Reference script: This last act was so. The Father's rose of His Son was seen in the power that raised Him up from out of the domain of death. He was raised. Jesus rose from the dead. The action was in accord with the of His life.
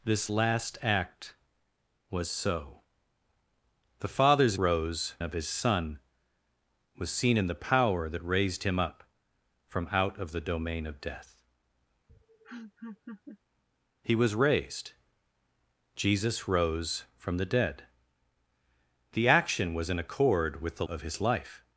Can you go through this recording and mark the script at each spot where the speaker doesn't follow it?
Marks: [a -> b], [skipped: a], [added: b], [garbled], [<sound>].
This last act was so. The Father's rose of His Son was seen in the power that raised Him up from out of the domain of death. [laugh] He was raised. Jesus rose from the dead. The action was in accord with the of His life.